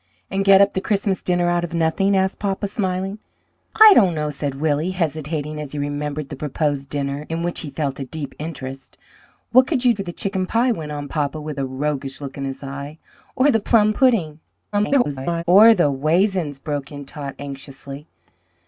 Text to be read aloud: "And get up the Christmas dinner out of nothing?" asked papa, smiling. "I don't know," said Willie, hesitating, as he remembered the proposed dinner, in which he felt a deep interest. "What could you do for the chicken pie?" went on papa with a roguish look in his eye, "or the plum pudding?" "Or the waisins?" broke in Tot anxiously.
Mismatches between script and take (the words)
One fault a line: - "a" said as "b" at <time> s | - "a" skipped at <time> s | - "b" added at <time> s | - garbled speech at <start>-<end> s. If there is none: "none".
- "do" skipped at 9.9 s
- garbled speech at 14.7-15.4 s